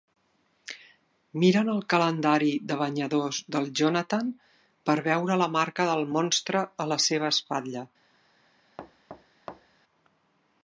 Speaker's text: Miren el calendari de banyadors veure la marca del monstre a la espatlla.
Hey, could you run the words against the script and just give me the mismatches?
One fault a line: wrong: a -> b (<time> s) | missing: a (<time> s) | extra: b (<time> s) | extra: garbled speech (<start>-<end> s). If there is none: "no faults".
extra: del Jonathan per (3.6 s)
extra: seva (7.1 s)